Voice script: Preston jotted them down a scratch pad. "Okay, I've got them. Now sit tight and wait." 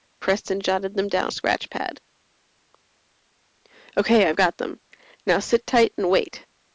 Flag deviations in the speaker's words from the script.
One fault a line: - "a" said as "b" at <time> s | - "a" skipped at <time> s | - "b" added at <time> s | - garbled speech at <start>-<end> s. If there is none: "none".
none